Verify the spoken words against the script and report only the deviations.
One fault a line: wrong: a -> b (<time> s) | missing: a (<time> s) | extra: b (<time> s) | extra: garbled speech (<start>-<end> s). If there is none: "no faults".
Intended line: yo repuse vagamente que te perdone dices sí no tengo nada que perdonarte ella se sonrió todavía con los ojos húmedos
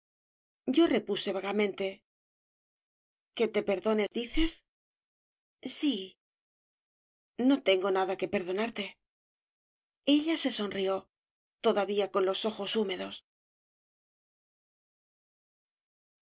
no faults